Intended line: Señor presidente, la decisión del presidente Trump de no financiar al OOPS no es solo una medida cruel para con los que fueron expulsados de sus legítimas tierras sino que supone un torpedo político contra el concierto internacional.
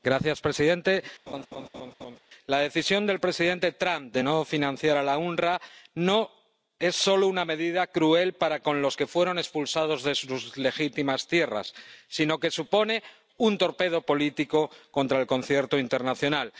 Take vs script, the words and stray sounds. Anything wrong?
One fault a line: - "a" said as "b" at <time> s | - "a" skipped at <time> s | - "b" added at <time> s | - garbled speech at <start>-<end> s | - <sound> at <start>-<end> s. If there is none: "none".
- laugh at 1.3-2.2 s